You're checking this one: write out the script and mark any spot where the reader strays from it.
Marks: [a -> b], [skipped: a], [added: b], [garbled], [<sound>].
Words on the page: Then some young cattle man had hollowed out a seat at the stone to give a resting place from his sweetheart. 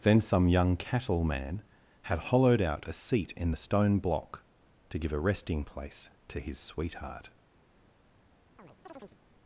Then some young cattle man had hollowed out a seat [at -> in] the stone [added: block] to give a resting place [from -> to] his sweetheart. [chirp]